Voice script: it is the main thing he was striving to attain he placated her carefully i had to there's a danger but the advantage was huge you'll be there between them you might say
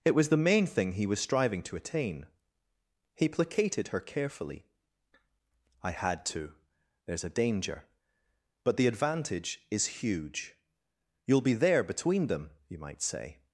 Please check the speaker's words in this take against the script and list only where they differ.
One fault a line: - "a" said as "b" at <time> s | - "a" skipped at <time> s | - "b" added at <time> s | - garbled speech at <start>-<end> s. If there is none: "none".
- "is" said as "was" at 0.1 s
- "was" said as "is" at 9.7 s